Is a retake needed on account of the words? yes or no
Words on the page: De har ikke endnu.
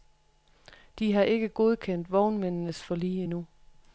yes